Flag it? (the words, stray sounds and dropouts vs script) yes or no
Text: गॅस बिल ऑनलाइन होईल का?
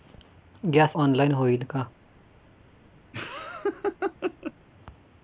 yes